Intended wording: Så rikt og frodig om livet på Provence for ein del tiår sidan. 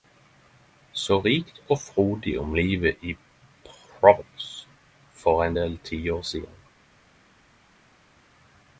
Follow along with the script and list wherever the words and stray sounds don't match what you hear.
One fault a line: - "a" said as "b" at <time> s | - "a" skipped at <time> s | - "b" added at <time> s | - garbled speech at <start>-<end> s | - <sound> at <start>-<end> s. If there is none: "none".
- "på" said as "i" at 3.0 s